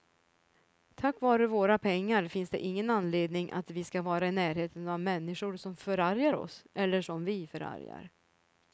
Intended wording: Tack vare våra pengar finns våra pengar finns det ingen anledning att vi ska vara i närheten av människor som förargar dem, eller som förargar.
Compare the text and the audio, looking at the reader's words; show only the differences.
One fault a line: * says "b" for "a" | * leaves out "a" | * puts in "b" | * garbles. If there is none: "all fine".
* leaves out "våra pengar finns"
* says "oss" for "dem"
* puts in "vi"